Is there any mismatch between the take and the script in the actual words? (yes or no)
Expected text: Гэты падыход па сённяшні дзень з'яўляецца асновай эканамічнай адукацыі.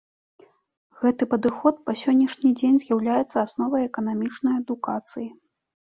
no